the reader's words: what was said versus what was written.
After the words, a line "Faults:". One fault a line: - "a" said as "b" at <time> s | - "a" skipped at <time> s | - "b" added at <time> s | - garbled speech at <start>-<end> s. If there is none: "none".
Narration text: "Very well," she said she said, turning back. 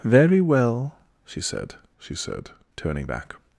"Very well," she said she said, turning back.
Faults:
none